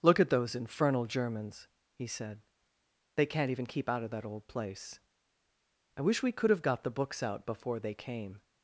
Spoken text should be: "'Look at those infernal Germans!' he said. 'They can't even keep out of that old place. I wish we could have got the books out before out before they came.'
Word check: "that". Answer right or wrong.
right